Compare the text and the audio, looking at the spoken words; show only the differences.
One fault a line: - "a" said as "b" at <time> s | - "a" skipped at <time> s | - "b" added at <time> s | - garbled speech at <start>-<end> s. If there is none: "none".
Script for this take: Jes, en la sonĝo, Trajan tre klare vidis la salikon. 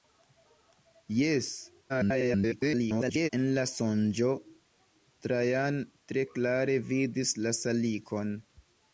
- garbled speech at 1.9-3.3 s